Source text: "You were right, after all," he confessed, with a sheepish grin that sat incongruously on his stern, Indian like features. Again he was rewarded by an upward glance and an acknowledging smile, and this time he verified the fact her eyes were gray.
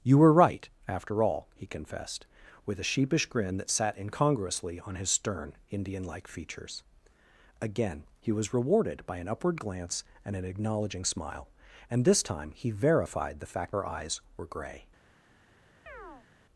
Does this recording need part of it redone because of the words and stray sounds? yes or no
yes